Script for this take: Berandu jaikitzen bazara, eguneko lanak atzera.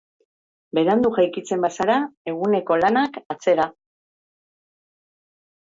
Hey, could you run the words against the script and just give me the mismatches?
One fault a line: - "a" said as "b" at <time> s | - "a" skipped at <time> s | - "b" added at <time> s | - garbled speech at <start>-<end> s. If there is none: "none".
none